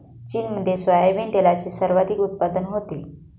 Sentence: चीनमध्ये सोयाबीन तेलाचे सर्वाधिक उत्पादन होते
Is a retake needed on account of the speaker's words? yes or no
no